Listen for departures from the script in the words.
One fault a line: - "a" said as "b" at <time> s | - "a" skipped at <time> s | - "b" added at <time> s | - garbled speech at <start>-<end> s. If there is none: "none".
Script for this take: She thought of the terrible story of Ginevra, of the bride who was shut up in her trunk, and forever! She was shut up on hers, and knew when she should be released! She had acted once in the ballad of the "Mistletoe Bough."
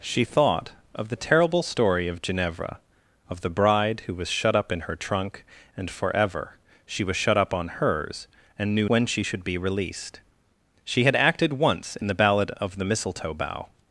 none